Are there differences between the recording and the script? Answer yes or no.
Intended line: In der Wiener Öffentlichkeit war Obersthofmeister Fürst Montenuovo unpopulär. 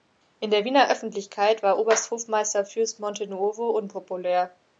no